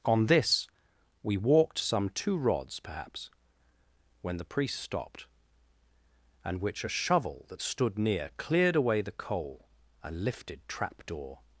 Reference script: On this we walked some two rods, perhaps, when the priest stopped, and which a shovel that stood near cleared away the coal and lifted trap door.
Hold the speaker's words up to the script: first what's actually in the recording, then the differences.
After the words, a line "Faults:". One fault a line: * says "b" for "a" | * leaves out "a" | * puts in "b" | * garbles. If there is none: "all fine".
On this we walked some two rods, perhaps, when the priest stopped, and which a shovel that stood near cleared away the coal and lifted trap door.
Faults:
all fine